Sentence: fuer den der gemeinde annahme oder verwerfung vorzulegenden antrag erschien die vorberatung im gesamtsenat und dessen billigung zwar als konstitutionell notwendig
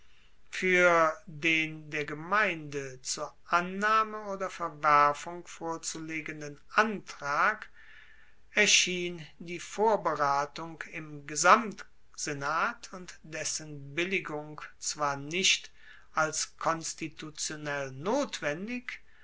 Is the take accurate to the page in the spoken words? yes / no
no